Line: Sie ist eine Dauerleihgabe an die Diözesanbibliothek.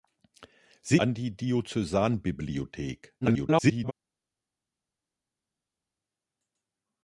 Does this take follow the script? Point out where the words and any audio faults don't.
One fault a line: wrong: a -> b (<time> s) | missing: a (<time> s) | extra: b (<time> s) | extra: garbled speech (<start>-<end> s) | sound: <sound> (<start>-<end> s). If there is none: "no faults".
missing: ist eine Dauerleihgabe (1.0 s)
extra: garbled speech (3.2-3.9 s)